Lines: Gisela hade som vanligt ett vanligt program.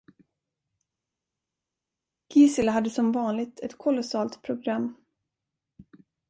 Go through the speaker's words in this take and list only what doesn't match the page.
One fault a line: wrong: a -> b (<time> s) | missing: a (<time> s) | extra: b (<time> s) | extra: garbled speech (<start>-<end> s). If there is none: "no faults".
wrong: vanligt -> kolossalt (3.8 s)